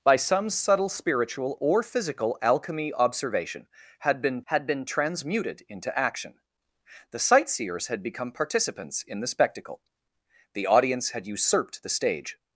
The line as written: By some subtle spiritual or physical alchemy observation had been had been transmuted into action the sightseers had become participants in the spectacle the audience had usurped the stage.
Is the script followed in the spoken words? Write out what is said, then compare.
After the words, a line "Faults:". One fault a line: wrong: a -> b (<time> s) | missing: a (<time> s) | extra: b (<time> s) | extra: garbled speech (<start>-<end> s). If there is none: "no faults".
By some subtle spiritual or physical alchemy observation had been had been transmuted into action the sightseers had become participants in the spectacle the audience had usurped the stage.
Faults:
no faults